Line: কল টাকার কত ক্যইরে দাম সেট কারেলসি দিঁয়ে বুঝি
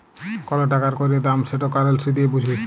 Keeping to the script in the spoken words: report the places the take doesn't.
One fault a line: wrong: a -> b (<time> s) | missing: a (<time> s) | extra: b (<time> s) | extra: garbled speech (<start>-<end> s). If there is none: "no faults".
missing: কত (0.9 s)